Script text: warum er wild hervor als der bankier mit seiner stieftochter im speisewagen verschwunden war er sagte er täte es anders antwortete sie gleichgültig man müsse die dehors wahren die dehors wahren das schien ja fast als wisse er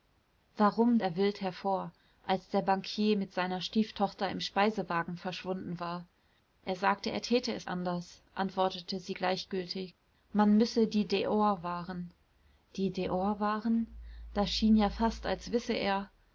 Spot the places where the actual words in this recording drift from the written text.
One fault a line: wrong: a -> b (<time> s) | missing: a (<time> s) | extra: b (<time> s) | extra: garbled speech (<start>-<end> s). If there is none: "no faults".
no faults